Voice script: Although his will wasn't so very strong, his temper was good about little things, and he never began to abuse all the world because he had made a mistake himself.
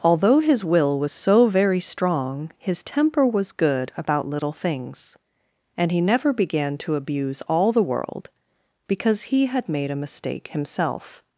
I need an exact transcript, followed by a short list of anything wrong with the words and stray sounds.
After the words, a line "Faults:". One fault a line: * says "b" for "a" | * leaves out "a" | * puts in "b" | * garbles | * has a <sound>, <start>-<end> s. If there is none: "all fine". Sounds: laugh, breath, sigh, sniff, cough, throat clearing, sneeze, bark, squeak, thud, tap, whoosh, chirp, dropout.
Although his will was so very strong, his temper was good about little things, and he never began to abuse all the world because he had made a mistake himself.
Faults:
* says "was" for "wasn't"